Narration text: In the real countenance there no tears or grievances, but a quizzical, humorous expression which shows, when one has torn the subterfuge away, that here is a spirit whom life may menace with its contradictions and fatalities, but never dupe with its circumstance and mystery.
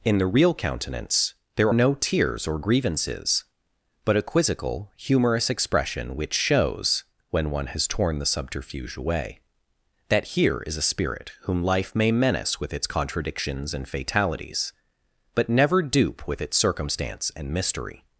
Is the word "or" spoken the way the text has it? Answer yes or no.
yes